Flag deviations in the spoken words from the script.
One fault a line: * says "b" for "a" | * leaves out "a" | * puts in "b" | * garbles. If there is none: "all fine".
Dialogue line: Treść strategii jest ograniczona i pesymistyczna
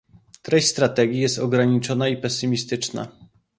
all fine